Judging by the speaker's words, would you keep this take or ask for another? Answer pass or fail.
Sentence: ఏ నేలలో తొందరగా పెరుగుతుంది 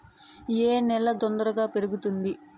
pass